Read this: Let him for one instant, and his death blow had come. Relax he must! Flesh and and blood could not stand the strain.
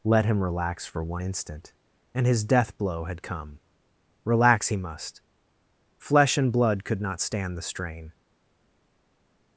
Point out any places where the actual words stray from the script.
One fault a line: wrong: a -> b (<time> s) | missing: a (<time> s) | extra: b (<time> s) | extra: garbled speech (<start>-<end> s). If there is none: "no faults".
extra: relax (0.4 s)
missing: and (6.5 s)